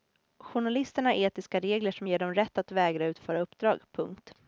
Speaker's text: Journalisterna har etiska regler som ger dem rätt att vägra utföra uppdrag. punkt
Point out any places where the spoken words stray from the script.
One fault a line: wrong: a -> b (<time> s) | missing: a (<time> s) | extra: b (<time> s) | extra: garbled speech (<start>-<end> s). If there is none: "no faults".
no faults